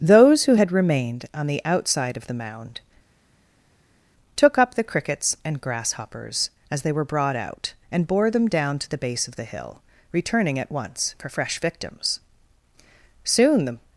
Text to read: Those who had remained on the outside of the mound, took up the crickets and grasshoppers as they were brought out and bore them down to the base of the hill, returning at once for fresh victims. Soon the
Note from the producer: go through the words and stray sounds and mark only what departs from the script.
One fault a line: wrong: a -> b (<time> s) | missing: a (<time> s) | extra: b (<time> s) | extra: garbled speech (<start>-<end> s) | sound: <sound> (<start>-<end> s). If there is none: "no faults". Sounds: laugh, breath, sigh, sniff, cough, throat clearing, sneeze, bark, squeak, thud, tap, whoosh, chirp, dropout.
no faults